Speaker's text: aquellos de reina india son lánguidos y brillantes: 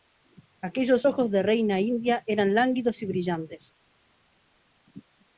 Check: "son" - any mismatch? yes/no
yes